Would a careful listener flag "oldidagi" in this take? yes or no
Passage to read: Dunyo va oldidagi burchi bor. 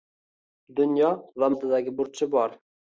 no